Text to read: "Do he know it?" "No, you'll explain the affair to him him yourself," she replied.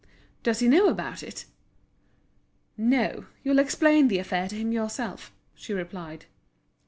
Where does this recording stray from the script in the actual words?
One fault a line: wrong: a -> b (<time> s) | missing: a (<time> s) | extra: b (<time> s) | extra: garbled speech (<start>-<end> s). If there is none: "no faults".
wrong: Do -> Does (0.4 s)
extra: about (0.9 s)
missing: him (4.7 s)